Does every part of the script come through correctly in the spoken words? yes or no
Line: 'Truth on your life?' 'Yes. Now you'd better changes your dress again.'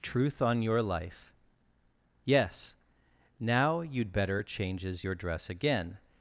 yes